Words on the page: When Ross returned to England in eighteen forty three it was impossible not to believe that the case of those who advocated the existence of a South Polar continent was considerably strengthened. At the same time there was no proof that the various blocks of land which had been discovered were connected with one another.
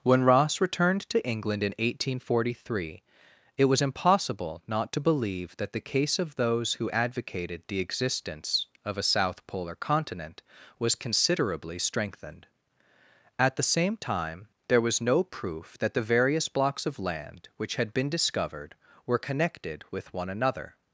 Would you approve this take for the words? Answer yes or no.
yes